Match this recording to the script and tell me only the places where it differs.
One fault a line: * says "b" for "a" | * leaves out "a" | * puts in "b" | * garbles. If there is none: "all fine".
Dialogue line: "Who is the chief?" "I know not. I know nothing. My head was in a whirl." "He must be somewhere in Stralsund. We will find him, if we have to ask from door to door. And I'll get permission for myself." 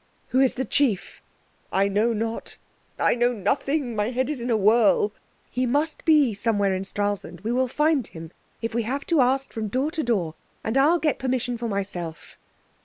* says "is" for "was"